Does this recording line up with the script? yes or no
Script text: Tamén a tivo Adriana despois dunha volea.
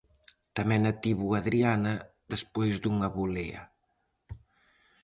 yes